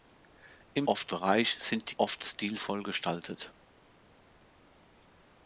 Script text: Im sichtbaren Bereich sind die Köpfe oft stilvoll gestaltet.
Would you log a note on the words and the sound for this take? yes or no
yes